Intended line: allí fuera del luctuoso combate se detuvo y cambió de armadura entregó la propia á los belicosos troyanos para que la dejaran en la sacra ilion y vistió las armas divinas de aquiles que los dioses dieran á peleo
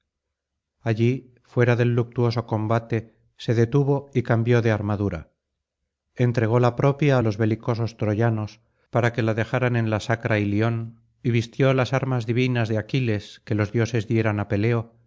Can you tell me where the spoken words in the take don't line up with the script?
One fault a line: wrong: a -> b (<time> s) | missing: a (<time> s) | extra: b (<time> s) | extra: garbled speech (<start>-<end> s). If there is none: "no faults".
no faults